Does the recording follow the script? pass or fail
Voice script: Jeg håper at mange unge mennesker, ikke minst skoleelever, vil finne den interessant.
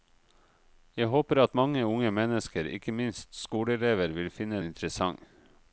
fail